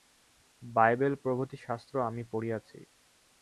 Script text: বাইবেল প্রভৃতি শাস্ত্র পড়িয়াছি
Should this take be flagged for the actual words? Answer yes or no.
yes